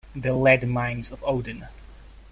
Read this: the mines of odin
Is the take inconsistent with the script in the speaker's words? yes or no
yes